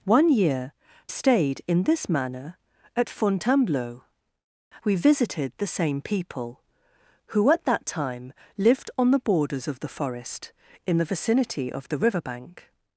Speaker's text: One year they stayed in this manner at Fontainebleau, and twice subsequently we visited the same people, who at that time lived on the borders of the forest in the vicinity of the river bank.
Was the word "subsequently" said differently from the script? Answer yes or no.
yes